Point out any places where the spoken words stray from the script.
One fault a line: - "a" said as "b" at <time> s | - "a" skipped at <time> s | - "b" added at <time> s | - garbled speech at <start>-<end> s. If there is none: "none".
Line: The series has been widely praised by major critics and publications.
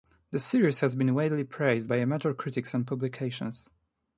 none